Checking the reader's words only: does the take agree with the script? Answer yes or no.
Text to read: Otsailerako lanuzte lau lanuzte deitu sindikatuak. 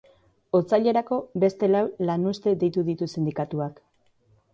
no